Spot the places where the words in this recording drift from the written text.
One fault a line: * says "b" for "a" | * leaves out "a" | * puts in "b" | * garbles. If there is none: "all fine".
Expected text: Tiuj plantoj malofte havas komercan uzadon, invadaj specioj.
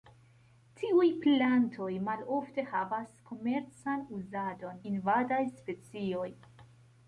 all fine